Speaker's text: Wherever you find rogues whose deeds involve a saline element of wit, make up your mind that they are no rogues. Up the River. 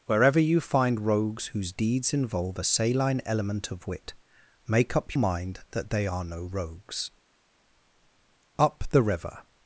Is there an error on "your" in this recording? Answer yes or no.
yes